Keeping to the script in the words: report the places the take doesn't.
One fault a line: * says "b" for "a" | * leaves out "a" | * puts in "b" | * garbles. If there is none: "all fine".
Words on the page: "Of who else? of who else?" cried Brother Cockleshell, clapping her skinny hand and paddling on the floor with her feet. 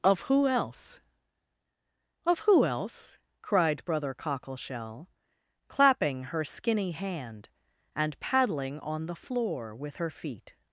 all fine